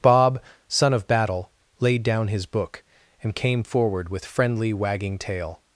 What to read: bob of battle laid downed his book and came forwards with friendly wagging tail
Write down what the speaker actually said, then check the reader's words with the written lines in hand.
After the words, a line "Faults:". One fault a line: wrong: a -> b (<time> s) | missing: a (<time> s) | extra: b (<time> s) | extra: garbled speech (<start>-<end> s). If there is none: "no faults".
bob son of battle laid down his book and came forward with friendly wagging tail
Faults:
extra: son (0.7 s)
wrong: downed -> down (2.0 s)
wrong: forwards -> forward (3.6 s)